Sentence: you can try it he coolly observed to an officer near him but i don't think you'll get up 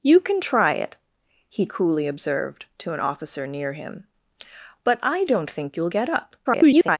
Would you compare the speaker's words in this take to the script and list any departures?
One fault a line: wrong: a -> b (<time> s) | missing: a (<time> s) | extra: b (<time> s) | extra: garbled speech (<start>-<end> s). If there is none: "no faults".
extra: garbled speech (6.4-7.0 s)